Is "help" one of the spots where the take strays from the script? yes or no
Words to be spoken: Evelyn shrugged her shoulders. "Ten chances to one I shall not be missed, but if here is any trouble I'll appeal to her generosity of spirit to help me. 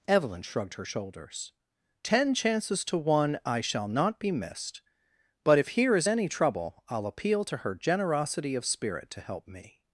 no